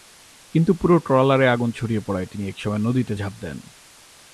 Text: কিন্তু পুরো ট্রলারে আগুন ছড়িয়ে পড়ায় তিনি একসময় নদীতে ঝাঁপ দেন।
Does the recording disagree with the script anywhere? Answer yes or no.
no